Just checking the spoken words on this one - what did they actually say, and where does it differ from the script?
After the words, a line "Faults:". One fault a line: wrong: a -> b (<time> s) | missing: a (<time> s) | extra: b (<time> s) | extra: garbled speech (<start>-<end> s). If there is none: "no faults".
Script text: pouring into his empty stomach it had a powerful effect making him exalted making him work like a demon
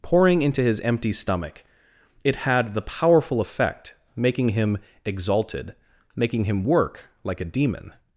pouring into his empty stomach it had the powerful effect making him exalted making him work like a demon
Faults:
wrong: a -> the (2.7 s)